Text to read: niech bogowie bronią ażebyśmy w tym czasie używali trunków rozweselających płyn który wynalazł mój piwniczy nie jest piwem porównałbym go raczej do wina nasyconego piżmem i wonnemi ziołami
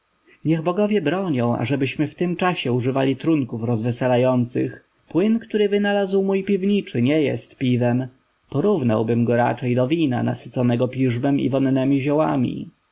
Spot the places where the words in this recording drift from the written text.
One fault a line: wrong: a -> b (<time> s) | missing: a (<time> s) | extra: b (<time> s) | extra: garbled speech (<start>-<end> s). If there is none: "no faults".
no faults